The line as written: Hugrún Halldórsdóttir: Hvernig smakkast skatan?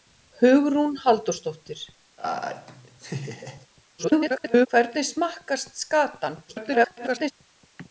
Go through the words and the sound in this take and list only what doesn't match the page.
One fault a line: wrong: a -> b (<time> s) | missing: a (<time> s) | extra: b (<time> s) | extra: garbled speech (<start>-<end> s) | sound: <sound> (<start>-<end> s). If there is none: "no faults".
sound: laugh (2.2-3.7 s)
extra: garbled speech (4.0-4.7 s)
extra: garbled speech (6.5-7.3 s)